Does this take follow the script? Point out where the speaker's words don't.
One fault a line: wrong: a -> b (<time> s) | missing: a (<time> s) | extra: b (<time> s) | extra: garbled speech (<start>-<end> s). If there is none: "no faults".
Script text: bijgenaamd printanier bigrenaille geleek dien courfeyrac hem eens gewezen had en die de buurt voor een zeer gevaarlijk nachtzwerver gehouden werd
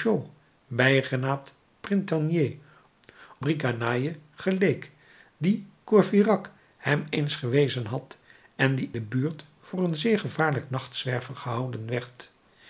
no faults